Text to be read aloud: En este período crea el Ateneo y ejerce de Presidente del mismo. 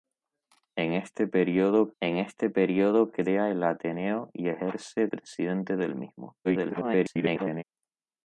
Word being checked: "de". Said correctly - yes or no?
no